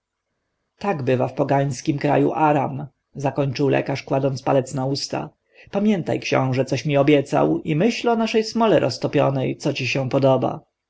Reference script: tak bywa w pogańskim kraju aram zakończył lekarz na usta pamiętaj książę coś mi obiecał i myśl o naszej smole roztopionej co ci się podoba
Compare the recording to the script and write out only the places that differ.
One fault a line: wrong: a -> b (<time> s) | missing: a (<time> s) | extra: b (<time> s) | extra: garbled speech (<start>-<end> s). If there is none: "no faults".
extra: kładąc palec (4.0 s)